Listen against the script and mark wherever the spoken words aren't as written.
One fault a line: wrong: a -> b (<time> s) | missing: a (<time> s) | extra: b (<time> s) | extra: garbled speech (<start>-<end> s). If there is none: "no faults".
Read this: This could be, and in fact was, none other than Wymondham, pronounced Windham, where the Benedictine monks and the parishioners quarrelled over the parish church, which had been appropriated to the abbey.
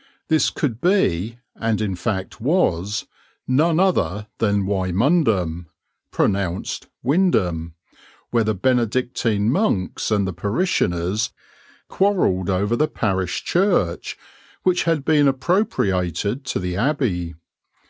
no faults